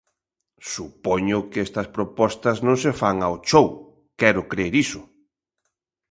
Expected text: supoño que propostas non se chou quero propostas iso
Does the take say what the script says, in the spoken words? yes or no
no